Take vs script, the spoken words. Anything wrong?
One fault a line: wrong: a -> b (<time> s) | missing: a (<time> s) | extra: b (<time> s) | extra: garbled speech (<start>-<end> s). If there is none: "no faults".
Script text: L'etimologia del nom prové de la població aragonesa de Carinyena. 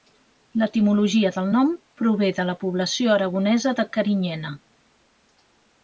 no faults